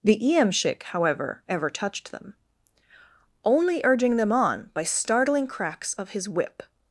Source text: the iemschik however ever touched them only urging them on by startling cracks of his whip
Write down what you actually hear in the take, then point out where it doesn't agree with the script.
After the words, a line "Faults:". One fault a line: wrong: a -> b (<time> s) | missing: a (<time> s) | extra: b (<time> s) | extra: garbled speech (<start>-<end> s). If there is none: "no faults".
the iemschik however ever touched them only urging them on by startling cracks of his whip
Faults:
no faults